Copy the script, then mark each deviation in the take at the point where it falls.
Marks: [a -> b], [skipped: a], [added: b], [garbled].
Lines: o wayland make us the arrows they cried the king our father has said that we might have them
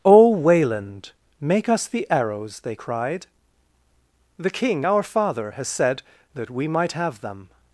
o wayland make us the arrows they cried the king our father has said that we might have them